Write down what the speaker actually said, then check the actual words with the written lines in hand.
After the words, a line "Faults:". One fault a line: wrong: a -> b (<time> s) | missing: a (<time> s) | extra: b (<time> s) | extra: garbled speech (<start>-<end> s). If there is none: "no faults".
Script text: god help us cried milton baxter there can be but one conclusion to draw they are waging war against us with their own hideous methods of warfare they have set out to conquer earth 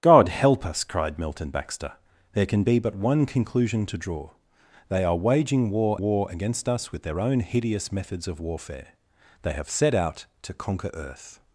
god help us cried milton baxter there can be but one conclusion to draw they are waging war war against us with their own hideous methods of warfare they have set out to conquer earth
Faults:
extra: war (6.0 s)